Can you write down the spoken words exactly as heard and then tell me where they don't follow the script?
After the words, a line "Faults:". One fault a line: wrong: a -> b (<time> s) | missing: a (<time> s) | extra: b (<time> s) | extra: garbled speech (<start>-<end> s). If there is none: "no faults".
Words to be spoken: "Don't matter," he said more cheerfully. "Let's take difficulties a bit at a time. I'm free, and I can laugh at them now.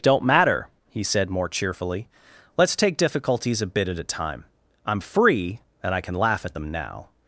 "Don't matter," he said more cheerfully. "Let's take difficulties a bit at a time. I'm free, and I can laugh at them now.
Faults:
no faults